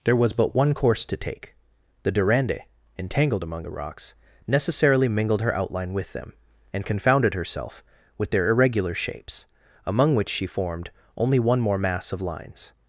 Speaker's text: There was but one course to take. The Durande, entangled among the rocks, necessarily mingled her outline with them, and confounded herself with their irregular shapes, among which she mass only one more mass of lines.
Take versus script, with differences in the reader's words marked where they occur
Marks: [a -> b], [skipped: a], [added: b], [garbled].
There was but one course to take. The Durande, entangled among the rocks, necessarily mingled her outline with them, and confounded herself with their irregular shapes, among which she [mass -> formed] only one more mass of lines.